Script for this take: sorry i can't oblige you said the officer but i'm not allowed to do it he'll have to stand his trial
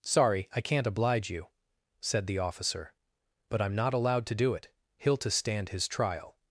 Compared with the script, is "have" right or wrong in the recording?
wrong